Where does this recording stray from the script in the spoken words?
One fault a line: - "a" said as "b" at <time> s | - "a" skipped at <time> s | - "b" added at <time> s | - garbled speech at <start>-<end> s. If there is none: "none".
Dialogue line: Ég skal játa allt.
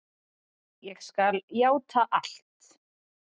none